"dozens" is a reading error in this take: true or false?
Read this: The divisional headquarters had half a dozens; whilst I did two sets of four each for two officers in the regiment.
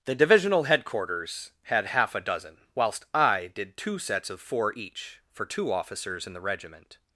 true